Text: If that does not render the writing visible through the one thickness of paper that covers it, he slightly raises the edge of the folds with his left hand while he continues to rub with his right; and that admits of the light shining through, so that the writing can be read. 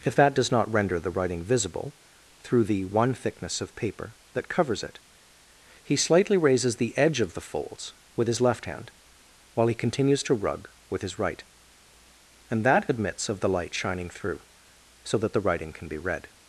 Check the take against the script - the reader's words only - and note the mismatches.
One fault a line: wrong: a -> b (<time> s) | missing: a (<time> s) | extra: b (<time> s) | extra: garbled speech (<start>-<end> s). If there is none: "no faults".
wrong: rub -> rug (10.3 s)